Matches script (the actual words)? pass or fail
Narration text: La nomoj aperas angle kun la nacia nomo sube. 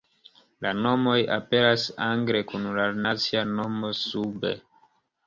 pass